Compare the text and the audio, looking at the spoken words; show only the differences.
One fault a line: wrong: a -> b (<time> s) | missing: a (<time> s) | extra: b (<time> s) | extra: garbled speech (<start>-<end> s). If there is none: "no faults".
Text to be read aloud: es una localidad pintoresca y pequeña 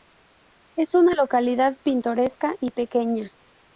no faults